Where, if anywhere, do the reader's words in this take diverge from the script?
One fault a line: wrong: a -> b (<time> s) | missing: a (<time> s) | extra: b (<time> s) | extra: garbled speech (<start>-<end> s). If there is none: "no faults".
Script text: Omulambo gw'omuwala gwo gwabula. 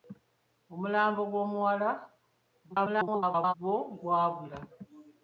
extra: garbled speech (2.7-3.5 s)